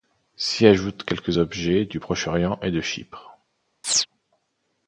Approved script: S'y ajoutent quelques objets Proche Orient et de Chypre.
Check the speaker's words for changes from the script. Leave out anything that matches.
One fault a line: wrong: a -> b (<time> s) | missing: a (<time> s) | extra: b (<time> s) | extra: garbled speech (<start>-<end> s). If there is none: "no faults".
extra: du (1.8 s)